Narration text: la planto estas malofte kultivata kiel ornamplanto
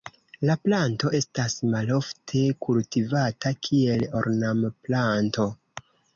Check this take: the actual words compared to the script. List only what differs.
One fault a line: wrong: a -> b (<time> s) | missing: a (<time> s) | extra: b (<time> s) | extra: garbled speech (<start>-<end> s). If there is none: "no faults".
no faults